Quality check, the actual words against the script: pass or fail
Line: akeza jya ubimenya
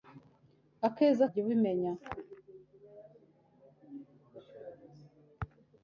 pass